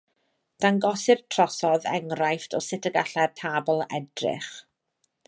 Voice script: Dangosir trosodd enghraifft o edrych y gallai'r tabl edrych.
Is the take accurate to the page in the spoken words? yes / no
no